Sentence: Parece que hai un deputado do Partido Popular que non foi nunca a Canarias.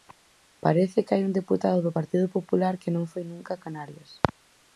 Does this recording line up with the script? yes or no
yes